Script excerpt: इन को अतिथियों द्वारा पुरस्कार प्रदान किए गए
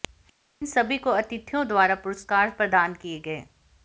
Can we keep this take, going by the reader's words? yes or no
no